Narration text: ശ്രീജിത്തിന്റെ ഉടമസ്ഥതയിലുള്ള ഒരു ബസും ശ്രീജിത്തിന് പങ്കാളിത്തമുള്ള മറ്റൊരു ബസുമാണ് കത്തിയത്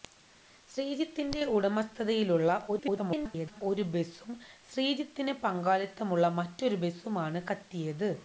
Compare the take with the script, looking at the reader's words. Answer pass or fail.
fail